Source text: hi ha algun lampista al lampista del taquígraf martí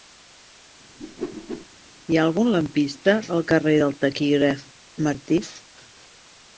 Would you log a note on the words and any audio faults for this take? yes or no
yes